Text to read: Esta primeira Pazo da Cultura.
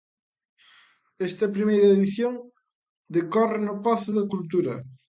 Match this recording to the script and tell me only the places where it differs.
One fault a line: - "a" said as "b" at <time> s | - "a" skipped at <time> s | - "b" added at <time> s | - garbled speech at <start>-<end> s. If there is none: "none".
- "edición decorre no" added at 1.9 s